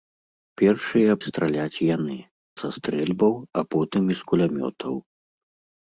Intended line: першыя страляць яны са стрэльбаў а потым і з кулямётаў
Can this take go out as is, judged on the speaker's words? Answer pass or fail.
pass